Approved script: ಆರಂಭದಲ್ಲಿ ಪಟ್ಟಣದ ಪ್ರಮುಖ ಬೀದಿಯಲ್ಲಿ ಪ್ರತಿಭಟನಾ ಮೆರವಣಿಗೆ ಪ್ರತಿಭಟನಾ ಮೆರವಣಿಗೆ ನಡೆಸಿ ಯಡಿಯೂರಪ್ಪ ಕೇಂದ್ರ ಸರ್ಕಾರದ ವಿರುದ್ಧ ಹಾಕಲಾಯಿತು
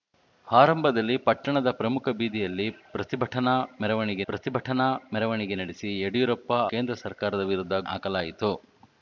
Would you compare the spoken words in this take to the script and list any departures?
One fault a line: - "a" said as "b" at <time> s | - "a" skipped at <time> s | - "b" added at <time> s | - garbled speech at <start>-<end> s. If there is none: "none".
none